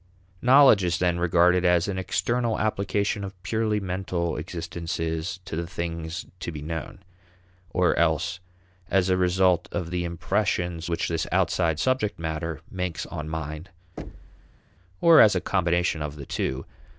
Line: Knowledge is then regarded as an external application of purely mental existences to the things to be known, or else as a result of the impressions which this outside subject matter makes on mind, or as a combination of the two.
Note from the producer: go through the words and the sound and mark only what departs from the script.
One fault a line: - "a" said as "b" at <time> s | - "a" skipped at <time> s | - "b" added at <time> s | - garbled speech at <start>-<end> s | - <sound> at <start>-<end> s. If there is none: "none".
- thud at 14.0-14.6 s